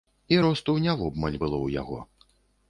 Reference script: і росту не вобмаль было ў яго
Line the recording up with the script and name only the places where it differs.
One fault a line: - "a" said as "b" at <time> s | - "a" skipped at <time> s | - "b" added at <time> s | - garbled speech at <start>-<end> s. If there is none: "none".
none